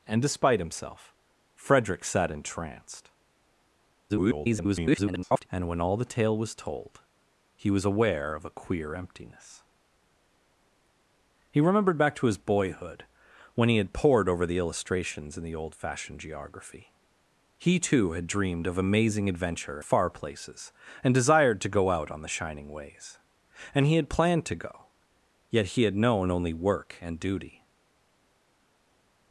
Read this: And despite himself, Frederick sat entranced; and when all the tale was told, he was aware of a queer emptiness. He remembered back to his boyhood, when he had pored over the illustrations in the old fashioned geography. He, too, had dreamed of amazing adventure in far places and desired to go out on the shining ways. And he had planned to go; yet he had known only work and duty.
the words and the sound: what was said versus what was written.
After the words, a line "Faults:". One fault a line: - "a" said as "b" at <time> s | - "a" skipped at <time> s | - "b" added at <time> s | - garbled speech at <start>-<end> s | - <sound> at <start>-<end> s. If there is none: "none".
And despite himself, Frederick sat entranced; [garbled] and when all the tale was told, he was aware of a queer emptiness. He remembered back to his boyhood, when he had pored over the illustrations in the old fashioned geography. He, too, had dreamed of amazing adventure far places and desired to go out on the shining ways. And he had planned to go; yet he had known only work and duty.
Faults:
- garbled speech at 4.1-5.5 s
- "in" skipped at 19.8 s